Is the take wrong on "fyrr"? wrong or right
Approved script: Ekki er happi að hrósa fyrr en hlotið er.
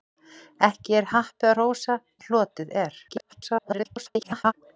wrong